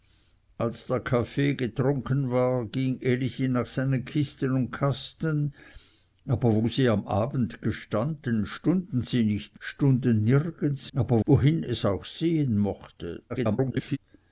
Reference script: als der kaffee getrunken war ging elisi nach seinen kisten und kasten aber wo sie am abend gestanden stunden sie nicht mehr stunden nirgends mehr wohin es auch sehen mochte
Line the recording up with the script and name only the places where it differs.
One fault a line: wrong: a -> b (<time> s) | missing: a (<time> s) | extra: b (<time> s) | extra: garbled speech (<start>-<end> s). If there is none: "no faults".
missing: mehr (9.6 s)
wrong: mehr -> aber (10.9 s)
extra: garbled speech (13.3-14.0 s)